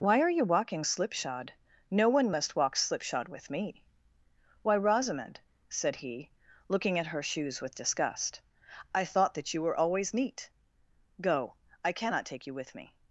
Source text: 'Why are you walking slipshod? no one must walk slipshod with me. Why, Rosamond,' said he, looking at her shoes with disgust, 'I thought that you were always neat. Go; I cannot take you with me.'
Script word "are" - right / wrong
right